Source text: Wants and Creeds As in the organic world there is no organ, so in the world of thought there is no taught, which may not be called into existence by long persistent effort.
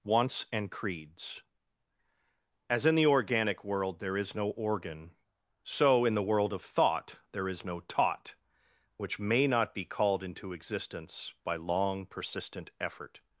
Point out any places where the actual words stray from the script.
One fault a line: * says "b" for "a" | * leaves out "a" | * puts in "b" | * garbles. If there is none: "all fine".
all fine